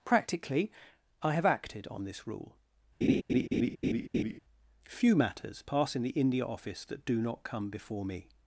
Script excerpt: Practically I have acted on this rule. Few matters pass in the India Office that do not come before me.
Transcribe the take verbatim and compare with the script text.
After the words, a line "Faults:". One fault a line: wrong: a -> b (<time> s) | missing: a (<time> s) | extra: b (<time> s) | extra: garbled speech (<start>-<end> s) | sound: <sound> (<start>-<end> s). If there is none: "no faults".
Practically I have acted on this rule. Few matters pass in the India Office that do not come before me.
Faults:
sound: laugh (3.0-4.4 s)